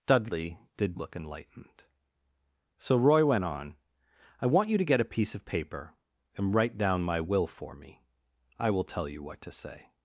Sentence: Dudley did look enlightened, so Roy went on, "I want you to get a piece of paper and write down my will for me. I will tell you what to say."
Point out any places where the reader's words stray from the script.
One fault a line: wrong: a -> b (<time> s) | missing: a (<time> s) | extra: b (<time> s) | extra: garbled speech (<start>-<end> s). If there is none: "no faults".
no faults